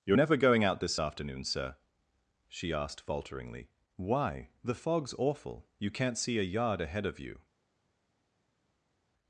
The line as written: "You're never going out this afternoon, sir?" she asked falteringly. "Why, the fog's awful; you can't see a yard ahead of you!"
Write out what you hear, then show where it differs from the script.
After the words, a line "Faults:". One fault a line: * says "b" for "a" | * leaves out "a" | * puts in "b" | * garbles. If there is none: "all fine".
"You're never going out this afternoon, sir?" she asked falteringly. "Why, the fog's awful; you can't see a yard ahead of you!"
Faults:
all fine